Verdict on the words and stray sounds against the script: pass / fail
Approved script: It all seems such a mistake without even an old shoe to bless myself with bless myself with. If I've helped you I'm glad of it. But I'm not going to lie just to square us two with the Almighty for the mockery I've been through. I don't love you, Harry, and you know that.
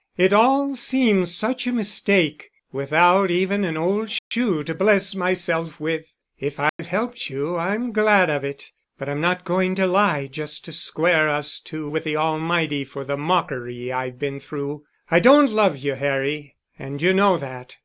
fail